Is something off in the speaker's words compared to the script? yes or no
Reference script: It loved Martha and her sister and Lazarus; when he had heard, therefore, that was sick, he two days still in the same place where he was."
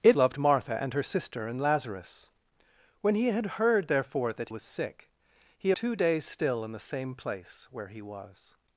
no